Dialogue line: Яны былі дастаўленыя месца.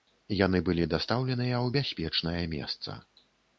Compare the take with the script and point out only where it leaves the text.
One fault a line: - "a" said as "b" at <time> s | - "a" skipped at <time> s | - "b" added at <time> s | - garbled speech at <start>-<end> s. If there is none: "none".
- "ў бяспечнае" added at 1.6 s